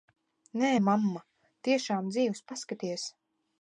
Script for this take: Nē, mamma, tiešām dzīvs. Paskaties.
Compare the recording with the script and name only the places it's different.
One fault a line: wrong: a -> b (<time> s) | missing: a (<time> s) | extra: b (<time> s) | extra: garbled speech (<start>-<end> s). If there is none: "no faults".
no faults